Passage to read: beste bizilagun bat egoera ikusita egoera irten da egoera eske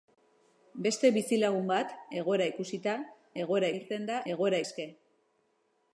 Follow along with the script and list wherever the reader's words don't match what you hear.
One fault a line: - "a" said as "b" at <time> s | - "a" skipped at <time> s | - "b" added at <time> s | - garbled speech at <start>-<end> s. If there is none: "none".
none